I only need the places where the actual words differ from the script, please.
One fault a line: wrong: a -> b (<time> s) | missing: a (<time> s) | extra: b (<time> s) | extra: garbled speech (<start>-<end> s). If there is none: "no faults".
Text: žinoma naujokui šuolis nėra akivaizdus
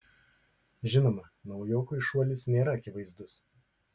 no faults